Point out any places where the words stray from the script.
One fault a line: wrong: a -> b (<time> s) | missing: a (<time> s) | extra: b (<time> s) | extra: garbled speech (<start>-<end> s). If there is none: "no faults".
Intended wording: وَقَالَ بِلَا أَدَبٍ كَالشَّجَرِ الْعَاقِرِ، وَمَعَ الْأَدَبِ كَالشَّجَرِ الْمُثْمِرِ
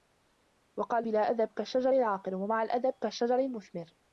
no faults